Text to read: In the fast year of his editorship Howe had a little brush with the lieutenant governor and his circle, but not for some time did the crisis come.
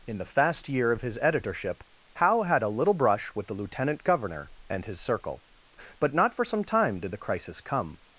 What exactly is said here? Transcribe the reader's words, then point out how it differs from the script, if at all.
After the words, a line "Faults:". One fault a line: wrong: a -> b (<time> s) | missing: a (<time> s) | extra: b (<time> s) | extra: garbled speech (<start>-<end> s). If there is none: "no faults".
In the fast year of his editorship Howe had a little brush with the lieutenant governor and his circle, but not for some time did the crisis come.
Faults:
no faults